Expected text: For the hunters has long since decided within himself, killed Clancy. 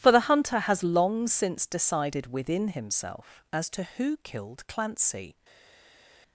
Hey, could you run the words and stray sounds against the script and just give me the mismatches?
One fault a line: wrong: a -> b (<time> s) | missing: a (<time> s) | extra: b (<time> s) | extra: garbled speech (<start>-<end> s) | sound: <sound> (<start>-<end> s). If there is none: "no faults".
wrong: hunters -> hunter (0.2 s)
extra: as to who (3.5 s)